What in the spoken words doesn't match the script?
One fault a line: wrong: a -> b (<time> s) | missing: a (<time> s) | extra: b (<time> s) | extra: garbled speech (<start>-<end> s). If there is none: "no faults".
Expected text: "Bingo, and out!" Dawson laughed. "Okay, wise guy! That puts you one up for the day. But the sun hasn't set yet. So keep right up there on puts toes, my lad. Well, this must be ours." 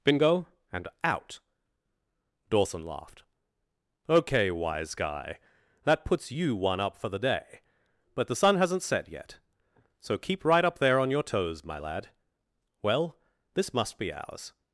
wrong: puts -> your (11.1 s)